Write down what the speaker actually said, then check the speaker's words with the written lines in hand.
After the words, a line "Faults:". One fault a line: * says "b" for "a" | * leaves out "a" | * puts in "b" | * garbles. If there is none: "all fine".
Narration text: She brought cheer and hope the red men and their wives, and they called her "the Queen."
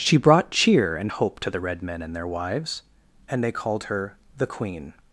She brought cheer and hope to the red men and their wives, and they called her "the Queen."
Faults:
* puts in "to"